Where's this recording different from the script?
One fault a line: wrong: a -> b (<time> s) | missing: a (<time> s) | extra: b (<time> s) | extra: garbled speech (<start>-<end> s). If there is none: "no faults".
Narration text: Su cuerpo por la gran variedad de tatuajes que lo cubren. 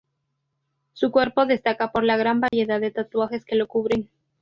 extra: destaca (1.4 s)